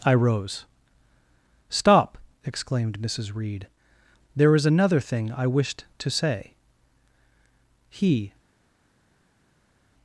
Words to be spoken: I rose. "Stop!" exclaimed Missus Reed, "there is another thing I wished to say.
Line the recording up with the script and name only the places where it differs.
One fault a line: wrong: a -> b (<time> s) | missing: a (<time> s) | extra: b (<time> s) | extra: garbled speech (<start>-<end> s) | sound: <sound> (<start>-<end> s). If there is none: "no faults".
extra: He (7.9 s)